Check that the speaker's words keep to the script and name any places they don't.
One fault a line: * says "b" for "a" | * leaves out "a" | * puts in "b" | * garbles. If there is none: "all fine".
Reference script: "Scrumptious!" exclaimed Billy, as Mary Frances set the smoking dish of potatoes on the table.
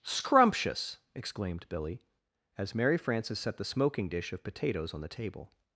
all fine